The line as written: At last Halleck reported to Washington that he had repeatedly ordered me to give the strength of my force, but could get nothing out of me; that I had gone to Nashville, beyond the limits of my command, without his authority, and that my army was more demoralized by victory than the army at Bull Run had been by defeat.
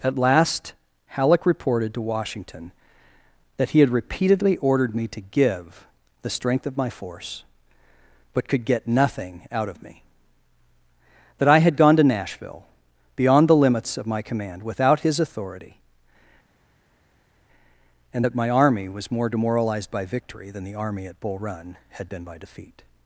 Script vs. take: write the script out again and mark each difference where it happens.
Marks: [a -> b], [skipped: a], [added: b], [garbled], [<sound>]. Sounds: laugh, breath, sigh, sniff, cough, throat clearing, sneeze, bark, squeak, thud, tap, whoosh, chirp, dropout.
At last Halleck reported to Washington that he had repeatedly ordered me to give the strength of my force, but could get nothing out of me; that I had gone to Nashville, beyond the limits of my command, without his authority, and that my army was more demoralized by victory than the army at Bull Run had been by defeat.